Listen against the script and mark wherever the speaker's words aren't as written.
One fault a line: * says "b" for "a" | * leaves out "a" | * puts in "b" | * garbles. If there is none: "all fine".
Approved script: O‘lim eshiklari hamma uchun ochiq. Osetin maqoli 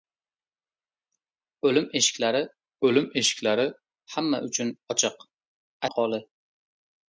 * puts in "o‘lim eshiklari"
* leaves out "Osetin"